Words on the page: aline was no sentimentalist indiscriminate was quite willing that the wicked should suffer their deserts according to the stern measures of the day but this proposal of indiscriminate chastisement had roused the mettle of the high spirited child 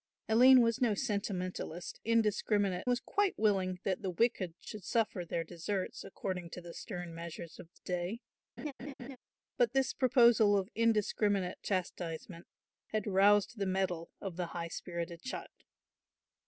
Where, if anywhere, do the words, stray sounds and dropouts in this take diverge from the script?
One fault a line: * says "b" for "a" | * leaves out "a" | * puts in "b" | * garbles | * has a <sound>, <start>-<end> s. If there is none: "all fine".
* has a laugh, 8.6-9.2 s